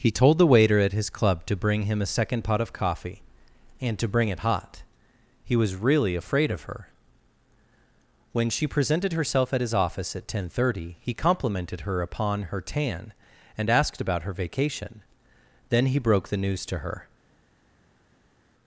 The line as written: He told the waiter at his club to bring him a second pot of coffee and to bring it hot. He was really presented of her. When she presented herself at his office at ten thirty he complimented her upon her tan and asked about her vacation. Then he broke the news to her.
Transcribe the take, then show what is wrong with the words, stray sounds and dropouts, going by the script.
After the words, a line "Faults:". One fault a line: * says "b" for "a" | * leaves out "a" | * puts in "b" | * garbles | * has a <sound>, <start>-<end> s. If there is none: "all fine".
He told the waiter at his club to bring him a second pot of coffee and to bring it hot. He was really afraid of her. When she presented herself at his office at ten thirty he complimented her upon her tan and asked about her vacation. Then he broke the news to her.
Faults:
* says "afraid" for "presented"